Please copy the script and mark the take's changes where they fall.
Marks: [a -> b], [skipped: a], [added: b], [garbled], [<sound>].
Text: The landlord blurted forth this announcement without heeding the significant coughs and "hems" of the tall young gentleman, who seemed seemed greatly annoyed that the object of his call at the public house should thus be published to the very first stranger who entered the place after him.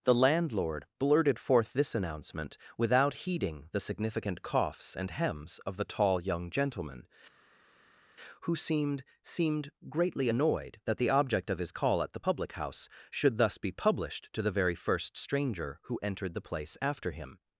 The landlord blurted forth this announcement without heeding the significant coughs and "hems" of the tall young gentleman, who seemed seemed greatly annoyed that the object of his call at the public house should thus be published to the very first stranger who entered the place after him.